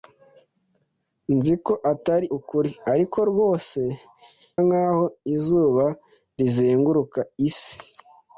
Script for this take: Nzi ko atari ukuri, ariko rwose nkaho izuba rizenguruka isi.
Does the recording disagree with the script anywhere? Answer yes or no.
no